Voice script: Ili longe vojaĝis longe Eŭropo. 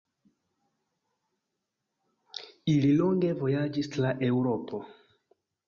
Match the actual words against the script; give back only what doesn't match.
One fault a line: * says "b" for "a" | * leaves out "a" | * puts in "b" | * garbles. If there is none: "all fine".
* says "tra" for "longe"